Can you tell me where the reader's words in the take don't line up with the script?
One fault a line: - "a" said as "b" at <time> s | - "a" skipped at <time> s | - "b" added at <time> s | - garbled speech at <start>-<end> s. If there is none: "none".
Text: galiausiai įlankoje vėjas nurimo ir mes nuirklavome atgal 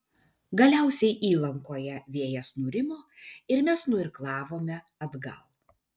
none